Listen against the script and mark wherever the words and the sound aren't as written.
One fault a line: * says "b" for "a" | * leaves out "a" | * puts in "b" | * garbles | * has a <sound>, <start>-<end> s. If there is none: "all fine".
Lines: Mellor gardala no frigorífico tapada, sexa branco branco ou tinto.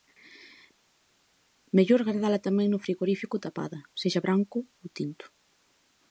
* puts in "tamén"
* leaves out "branco"